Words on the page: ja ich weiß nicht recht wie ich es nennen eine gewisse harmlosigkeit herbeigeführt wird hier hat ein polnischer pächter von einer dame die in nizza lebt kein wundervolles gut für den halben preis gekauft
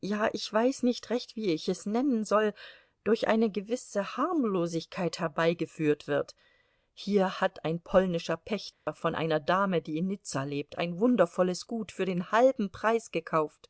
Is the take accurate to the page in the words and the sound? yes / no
no